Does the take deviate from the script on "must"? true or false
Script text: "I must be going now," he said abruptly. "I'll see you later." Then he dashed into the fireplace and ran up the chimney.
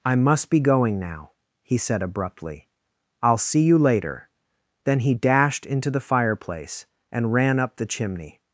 false